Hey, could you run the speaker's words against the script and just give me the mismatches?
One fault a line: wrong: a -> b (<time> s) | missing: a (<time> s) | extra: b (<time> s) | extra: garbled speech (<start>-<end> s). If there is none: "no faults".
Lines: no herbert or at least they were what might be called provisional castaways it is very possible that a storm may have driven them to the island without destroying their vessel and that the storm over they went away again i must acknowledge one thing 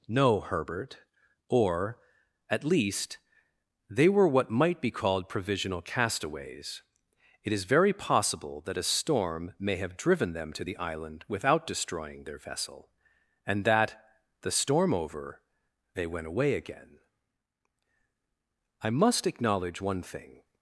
no faults